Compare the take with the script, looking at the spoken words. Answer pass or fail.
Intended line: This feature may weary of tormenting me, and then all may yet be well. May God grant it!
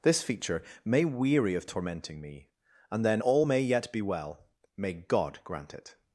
pass